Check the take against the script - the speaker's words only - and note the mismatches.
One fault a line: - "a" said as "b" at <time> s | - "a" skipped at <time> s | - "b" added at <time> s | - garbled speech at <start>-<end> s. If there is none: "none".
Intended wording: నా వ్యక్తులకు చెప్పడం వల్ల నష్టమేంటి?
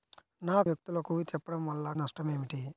none